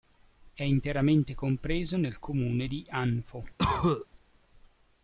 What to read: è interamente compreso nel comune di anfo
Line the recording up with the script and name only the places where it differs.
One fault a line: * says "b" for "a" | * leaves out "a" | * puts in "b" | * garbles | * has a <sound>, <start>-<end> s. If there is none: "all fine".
* has a cough, 3.6-4.1 s